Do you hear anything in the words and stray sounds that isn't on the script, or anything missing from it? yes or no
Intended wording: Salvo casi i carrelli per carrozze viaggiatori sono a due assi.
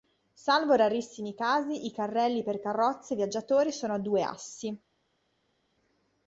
yes